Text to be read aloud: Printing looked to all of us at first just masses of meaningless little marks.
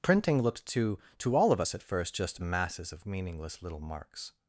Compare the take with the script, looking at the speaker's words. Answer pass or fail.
fail